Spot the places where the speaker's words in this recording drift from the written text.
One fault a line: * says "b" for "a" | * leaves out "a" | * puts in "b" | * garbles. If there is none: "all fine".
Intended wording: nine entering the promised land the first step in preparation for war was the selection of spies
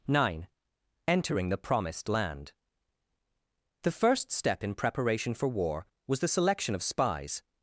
all fine